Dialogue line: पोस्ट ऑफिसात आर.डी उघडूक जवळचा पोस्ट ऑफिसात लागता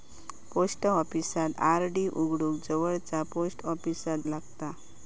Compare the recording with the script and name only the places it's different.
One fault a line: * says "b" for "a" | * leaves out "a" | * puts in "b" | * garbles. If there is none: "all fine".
all fine